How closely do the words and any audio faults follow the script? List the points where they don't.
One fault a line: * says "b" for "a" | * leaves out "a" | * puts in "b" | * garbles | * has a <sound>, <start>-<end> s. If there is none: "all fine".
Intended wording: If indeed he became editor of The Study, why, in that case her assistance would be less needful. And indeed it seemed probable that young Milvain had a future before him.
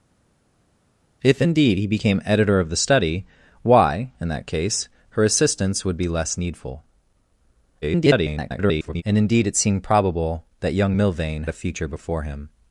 * garbles
* leaves out "had"